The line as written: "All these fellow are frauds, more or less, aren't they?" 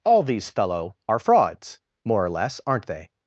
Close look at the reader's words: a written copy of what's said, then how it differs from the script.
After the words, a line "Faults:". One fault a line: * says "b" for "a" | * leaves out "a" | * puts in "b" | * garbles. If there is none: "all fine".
"All these fellow are frauds, more or less, aren't they?"
Faults:
all fine